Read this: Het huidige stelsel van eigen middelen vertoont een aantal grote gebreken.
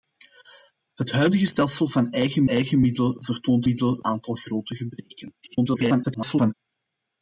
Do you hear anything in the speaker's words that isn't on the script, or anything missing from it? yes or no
yes